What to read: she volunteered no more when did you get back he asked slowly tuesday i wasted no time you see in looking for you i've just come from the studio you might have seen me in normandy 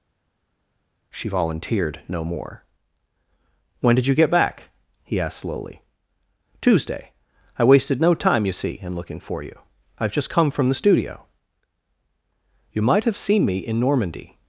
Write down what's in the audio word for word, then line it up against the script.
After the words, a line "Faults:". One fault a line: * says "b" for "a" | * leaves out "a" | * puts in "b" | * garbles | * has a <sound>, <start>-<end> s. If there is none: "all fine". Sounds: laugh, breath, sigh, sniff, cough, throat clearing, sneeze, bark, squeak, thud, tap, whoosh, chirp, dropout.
she volunteered no more when did you get back he asked slowly tuesday i wasted no time you see in looking for you i've just come from the studio you might have seen me in normandy
Faults:
all fine